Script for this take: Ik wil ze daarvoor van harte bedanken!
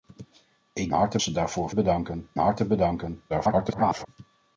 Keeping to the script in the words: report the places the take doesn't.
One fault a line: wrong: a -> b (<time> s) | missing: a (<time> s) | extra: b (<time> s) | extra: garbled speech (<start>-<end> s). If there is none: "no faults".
wrong: wil -> harte (0.9 s)
wrong: van -> bedanken (1.7 s)
extra: garbled speech (3.3-4.1 s)